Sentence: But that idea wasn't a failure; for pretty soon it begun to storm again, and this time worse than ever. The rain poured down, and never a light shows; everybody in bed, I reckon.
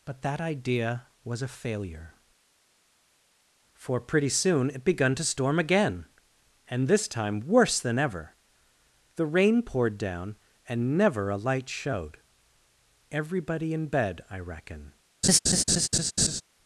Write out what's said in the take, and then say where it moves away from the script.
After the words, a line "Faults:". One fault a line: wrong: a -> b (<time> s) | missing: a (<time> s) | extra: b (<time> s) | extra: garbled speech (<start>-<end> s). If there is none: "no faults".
But that idea was a failure; for pretty soon it begun to storm again, and this time worse than ever. The rain poured down, and never a light showed; everybody in bed, I reckon.
Faults:
wrong: wasn't -> was (1.2 s)
wrong: shows -> showed (11.7 s)